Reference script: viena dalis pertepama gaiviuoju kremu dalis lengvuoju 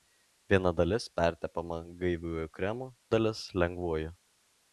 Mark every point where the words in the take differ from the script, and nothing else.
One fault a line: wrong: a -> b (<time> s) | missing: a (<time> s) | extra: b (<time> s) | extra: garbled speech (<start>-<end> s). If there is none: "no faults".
no faults